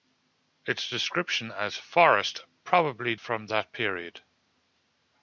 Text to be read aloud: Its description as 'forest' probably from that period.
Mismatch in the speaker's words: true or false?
false